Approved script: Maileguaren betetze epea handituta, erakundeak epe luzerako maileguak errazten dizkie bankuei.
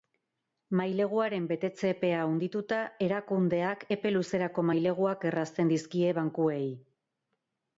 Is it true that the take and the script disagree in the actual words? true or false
false